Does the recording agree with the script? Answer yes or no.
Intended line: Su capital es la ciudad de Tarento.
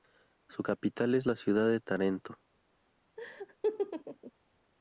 yes